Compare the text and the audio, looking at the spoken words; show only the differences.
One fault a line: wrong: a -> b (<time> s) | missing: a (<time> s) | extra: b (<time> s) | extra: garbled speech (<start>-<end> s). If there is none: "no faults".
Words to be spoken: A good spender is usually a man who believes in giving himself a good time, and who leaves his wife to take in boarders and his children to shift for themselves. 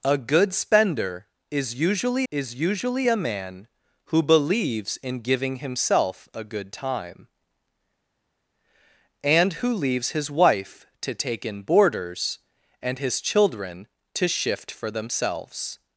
extra: is usually (2.3 s)